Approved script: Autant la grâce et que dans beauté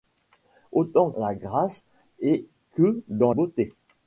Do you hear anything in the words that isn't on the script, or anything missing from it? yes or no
no